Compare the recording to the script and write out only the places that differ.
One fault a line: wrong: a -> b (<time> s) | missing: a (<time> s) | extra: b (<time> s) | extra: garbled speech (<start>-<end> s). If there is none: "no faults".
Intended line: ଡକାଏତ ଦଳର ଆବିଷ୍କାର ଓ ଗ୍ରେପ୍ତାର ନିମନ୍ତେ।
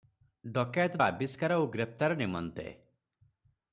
missing: ଦଳର (1.0 s)